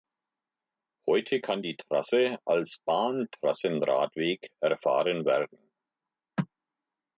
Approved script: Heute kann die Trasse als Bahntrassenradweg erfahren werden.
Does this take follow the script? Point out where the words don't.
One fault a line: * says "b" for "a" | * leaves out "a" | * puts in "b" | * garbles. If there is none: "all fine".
all fine